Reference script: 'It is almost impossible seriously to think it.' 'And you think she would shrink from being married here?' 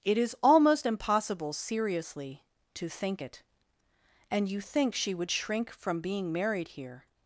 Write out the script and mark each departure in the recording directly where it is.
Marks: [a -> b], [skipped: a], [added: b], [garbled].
'It is almost impossible seriously to think it.' 'And you think she would shrink from being married here?'